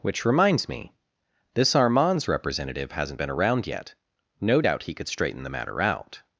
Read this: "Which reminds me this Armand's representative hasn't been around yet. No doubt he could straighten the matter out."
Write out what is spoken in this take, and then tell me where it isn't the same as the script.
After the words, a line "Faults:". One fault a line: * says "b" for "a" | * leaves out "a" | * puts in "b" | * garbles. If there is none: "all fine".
"Which reminds me this Armand's representative hasn't been around yet. No doubt he could straighten the matter out."
Faults:
all fine